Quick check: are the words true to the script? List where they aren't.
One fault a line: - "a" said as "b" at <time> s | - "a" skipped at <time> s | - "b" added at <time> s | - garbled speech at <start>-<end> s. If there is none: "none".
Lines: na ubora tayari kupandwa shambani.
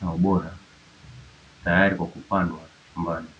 - "kwa" added at 1.9 s